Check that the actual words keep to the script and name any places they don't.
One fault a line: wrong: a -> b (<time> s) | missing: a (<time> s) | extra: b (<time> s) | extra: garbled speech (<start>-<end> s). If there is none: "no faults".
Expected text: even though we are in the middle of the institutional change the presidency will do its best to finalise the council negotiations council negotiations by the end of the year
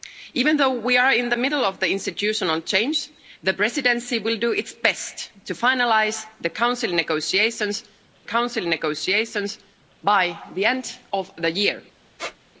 no faults